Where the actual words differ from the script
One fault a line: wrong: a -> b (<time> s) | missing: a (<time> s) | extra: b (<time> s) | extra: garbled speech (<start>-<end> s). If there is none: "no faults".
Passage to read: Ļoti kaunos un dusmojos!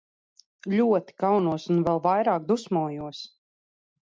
extra: vēl vairāk (1.9 s)